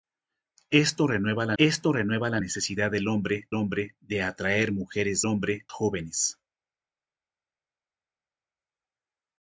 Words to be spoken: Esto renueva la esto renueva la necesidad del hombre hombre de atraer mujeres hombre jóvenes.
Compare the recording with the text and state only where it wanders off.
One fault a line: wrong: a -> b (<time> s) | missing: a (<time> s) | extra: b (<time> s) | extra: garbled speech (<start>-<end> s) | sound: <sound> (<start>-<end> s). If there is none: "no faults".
no faults